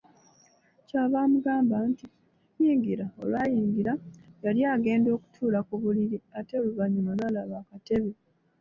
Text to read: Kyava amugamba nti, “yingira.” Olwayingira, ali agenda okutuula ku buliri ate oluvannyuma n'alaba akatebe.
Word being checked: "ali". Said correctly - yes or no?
no